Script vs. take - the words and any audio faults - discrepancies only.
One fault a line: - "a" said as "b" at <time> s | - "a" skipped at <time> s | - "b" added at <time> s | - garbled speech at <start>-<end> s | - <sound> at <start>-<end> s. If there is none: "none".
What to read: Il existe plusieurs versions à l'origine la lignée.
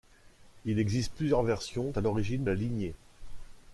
none